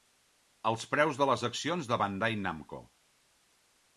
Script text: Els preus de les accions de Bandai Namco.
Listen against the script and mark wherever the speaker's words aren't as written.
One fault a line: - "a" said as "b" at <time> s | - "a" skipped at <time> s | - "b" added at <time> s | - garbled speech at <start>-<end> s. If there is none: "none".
none